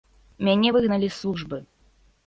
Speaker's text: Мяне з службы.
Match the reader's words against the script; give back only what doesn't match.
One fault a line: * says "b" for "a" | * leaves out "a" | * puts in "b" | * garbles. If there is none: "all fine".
* puts in "выгналі"